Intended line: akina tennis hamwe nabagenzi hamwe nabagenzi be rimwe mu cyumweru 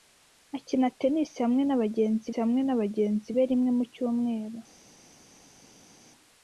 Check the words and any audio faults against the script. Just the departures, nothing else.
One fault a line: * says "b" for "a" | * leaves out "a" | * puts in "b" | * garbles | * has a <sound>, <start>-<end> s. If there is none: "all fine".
all fine